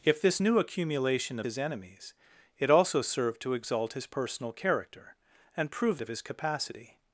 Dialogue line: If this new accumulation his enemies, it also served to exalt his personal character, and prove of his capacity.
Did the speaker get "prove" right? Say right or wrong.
right